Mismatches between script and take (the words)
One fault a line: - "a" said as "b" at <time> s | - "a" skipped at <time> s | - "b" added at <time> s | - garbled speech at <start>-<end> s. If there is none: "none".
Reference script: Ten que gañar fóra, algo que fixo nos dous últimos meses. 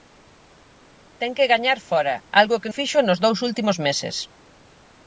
none